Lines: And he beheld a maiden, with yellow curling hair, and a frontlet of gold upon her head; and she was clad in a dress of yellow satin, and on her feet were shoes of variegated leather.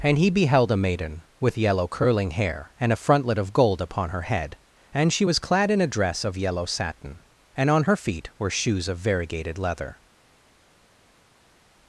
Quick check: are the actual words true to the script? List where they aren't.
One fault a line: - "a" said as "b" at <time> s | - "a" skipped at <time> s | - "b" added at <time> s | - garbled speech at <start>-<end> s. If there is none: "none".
none